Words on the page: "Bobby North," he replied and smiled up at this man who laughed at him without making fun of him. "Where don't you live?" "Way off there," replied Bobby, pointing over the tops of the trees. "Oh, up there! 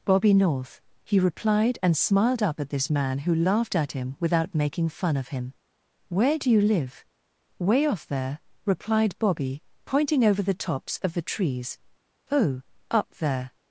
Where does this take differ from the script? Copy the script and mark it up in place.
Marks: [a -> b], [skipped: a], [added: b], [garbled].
"Bobby North," he replied and smiled up at this man who laughed at him without making fun of him. "Where [don't -> do] you live?" "Way off there," replied Bobby, pointing over the tops of the trees. "Oh, up there!